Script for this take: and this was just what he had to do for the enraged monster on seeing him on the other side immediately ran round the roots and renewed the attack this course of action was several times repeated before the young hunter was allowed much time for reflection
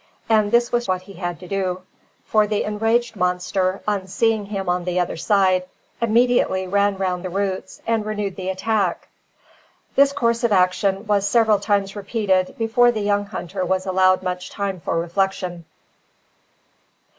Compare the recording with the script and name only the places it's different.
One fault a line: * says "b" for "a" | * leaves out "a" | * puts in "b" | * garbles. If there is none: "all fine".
* leaves out "just"